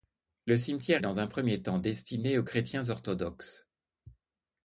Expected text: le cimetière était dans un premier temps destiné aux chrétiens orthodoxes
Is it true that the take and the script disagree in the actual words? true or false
true